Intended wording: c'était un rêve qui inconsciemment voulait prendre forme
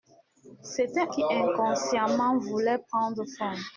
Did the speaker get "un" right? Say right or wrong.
wrong